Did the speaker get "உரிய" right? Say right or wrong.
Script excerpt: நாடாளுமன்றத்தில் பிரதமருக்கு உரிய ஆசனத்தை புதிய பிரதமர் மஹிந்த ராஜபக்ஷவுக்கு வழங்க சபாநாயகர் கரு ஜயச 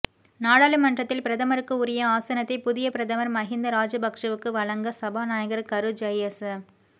right